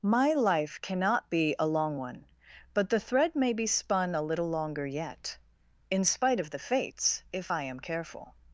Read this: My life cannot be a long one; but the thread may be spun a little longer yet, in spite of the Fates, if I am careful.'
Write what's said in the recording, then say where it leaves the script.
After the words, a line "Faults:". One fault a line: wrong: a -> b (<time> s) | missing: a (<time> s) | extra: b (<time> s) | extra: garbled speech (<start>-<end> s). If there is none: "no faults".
My life cannot be a long one; but the thread may be spun a little longer yet, in spite of the Fates, if I am careful.'
Faults:
no faults